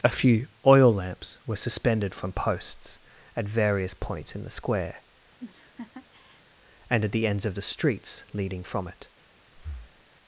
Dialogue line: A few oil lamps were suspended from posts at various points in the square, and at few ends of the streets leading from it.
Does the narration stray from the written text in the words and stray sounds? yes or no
yes